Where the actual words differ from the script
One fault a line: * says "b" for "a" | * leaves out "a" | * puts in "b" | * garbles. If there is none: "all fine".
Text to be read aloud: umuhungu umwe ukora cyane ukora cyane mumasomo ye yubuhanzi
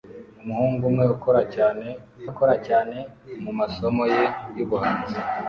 all fine